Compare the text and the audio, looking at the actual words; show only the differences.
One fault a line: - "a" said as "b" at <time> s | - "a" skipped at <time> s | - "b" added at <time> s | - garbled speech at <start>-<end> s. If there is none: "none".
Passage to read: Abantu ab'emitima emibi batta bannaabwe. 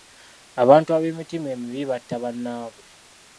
none